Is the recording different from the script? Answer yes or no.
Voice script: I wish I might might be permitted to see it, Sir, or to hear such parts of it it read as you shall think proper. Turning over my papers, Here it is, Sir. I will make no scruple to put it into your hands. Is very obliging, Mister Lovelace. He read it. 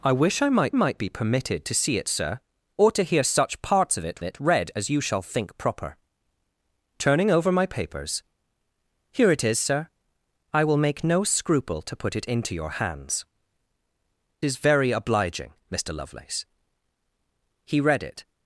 no